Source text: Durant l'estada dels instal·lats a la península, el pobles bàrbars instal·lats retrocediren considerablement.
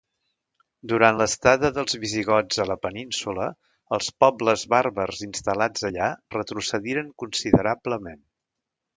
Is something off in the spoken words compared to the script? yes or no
yes